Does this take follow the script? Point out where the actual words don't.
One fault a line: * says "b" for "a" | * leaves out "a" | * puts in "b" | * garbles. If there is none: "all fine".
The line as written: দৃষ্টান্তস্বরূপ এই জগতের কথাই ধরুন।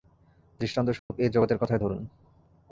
all fine